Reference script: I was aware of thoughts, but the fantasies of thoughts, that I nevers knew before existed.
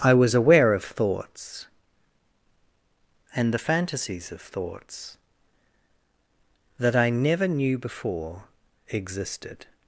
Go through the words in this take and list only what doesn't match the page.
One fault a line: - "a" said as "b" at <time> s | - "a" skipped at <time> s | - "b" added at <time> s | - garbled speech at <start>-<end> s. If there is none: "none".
- "but" said as "and" at 3.4 s
- "nevers" said as "never" at 7.1 s